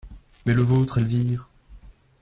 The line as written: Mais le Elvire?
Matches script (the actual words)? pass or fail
fail